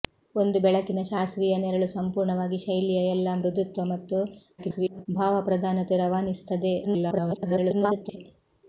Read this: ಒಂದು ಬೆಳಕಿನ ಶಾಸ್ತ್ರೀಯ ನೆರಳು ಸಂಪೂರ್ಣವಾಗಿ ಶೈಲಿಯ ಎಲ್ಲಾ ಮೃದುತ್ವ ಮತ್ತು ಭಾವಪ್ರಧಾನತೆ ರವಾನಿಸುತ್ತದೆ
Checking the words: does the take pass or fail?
fail